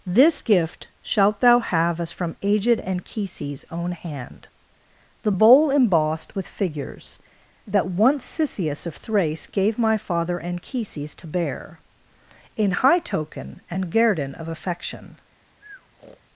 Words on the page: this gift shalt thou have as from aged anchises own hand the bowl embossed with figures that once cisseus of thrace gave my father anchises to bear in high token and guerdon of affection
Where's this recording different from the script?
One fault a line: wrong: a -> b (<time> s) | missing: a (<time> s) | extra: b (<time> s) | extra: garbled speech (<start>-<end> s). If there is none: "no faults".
no faults